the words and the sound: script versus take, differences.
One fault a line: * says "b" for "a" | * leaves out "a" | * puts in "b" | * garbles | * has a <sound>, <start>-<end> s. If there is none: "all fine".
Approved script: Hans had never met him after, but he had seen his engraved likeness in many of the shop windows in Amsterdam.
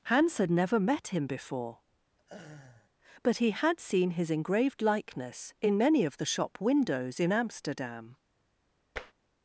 * says "before" for "after"
* has a laugh, 2.2-2.9 s
* has a tap, 9.0-9.1 s